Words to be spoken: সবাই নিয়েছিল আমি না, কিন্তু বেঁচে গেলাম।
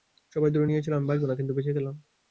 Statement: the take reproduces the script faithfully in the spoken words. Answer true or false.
false